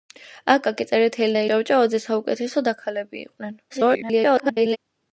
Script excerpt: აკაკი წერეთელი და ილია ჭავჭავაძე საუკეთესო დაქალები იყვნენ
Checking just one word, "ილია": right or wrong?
wrong